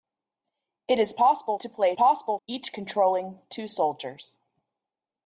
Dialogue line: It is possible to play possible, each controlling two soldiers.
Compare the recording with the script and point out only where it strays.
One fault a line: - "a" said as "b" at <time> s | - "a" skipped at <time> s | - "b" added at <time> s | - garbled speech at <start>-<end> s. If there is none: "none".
none